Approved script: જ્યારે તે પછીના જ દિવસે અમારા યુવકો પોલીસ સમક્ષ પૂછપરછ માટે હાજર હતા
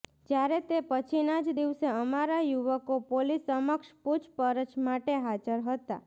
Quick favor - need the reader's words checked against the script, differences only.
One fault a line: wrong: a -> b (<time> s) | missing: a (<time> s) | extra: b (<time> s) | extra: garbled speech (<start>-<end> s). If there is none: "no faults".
no faults